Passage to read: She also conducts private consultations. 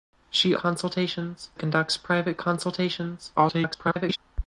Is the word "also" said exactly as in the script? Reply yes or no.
no